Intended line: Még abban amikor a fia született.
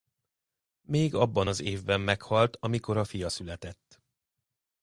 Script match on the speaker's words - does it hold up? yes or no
no